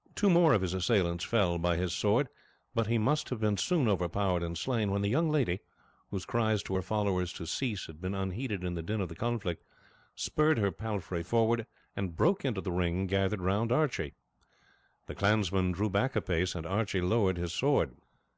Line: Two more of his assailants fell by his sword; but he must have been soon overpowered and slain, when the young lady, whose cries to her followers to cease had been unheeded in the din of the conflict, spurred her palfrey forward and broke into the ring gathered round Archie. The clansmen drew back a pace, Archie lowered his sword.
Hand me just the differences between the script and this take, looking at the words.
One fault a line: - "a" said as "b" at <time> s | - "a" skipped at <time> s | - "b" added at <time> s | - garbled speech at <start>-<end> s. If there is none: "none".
- "and" added at 16.6 s